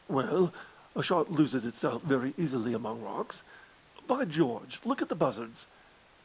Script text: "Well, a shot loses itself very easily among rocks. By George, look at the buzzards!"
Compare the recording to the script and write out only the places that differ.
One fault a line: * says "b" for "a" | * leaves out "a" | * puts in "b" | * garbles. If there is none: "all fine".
all fine